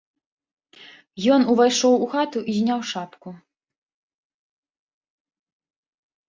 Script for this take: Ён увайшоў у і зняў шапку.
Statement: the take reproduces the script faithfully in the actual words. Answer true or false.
false